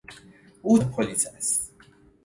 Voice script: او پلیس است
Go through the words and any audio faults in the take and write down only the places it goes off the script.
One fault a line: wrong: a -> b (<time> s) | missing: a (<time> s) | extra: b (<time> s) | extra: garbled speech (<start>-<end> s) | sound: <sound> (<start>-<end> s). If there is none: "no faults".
no faults